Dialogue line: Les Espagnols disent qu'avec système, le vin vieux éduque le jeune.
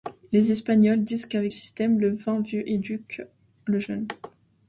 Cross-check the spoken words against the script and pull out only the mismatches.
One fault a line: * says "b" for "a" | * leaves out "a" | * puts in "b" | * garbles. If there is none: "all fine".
all fine